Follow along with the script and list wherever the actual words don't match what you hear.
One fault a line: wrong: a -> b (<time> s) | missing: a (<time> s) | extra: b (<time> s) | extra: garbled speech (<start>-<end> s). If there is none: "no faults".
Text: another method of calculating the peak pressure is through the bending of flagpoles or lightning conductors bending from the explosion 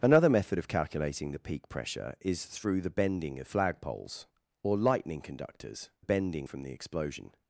no faults